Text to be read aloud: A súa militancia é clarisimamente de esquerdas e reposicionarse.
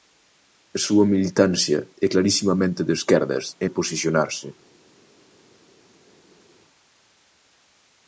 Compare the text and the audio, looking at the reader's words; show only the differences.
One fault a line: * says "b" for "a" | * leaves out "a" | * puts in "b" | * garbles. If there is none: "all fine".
all fine